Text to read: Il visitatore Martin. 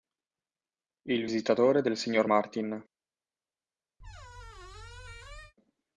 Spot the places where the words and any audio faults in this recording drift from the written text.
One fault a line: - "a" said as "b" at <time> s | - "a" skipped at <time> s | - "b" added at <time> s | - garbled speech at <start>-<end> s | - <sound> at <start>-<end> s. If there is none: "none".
- "del signor" added at 1.8 s
- squeak at 4.0-5.5 s